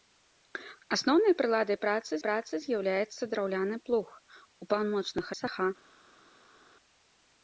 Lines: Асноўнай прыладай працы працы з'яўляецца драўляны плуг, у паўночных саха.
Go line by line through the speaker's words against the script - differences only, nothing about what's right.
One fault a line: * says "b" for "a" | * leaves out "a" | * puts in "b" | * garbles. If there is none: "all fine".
all fine